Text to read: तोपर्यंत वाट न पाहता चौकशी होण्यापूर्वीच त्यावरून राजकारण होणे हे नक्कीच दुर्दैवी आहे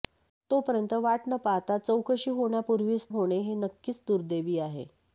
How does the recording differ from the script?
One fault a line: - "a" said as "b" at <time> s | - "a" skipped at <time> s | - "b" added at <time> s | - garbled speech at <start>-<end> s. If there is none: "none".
- "त्यावरून राजकारण" skipped at 3.1 s